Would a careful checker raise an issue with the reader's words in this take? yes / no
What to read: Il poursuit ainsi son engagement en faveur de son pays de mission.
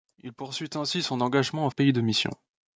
yes